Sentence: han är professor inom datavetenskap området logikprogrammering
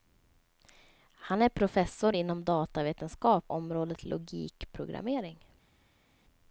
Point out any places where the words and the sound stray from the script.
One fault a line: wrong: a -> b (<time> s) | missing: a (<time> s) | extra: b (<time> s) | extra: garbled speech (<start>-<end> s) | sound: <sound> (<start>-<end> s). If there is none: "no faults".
no faults